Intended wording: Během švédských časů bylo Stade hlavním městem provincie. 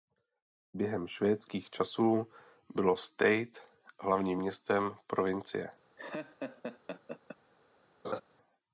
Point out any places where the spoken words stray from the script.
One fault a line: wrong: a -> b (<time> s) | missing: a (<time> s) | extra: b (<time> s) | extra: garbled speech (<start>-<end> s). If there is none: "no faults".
no faults